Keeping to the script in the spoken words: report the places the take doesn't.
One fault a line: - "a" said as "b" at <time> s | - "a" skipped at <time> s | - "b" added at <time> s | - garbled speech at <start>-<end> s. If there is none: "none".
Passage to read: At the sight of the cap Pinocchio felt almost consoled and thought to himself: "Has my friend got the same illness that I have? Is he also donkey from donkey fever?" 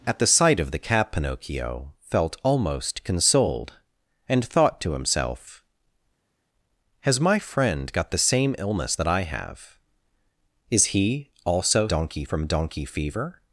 none